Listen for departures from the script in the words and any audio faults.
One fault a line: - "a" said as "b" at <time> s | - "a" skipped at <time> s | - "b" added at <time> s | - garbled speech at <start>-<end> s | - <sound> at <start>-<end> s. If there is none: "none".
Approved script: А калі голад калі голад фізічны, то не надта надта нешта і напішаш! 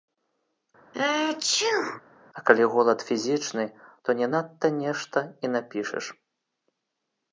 - sneeze at 0.9-2.0 s
- "калі голад" skipped at 3.0 s
- "надта" skipped at 4.7 s